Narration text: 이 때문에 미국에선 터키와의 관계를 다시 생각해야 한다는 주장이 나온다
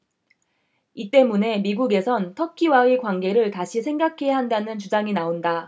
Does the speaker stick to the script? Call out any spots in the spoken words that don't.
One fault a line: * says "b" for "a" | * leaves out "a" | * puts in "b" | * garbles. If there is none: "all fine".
all fine